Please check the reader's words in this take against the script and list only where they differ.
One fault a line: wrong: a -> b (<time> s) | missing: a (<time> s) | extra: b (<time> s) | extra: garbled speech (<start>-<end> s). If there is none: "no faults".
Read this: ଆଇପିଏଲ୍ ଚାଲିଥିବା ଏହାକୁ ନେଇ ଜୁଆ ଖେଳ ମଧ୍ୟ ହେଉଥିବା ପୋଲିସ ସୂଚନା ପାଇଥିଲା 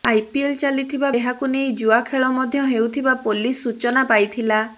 no faults